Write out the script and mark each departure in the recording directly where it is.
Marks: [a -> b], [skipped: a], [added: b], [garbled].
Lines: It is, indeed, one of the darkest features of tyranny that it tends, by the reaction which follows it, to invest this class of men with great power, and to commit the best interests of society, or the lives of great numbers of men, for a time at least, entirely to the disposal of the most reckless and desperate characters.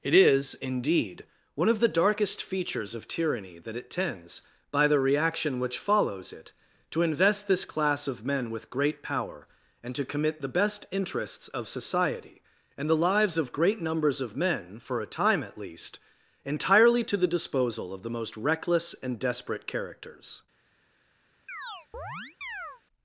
It is, indeed, one of the darkest features of tyranny that it tends, by the reaction which follows it, to invest this class of men with great power, and to commit the best interests of society, [or -> and] the lives of great numbers of men, for a time at least, entirely to the disposal of the most reckless and desperate characters.